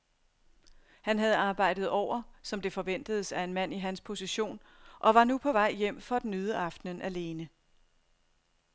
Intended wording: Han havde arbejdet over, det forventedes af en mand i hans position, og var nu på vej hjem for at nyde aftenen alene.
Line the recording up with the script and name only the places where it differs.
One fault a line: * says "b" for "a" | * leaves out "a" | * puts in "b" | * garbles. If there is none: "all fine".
* puts in "som"